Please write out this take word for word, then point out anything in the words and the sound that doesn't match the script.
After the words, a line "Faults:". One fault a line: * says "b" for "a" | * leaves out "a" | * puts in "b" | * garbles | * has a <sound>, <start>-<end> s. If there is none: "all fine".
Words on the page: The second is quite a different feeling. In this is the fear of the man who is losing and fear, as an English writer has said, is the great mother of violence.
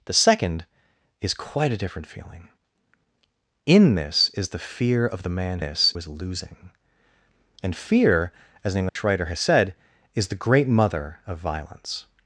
The second is quite a different feeling. In this is the fear of the man this is losing and fear, as an English writer has said, is the great mother of violence.
Faults:
* says "this" for "who"
* has a dropout, 8.9-9.0 s